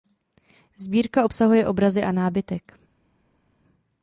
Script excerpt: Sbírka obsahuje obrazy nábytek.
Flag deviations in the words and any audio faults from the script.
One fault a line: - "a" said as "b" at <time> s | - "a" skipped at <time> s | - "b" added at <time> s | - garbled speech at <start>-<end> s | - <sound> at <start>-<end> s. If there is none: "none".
- "a" added at 2.0 s